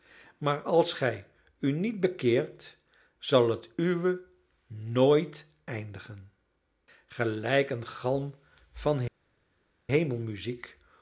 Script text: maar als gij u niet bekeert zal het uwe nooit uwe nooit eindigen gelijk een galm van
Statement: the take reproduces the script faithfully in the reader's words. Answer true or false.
false